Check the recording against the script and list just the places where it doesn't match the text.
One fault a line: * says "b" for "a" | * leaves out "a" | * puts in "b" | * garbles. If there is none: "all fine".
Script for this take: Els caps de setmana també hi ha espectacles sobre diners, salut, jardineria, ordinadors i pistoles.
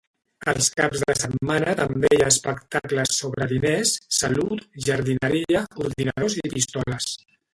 all fine